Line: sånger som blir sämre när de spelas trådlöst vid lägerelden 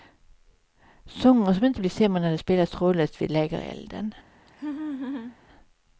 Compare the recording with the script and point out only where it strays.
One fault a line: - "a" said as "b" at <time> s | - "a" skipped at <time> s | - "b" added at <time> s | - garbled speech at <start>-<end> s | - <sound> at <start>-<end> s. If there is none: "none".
- "inte" added at 1.6 s
- laugh at 4.5-5.4 s